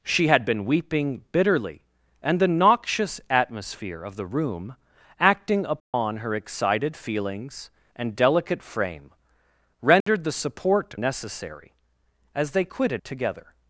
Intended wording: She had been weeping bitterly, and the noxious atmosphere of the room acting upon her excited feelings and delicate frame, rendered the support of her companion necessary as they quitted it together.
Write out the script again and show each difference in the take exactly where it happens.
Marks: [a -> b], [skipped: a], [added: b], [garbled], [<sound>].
She had been weeping bitterly, and the noxious atmosphere of the room acting upon [dropout] her excited feelings and delicate frame, rendered [dropout] the support [skipped: of her companion] necessary as they quitted [skipped: it] together.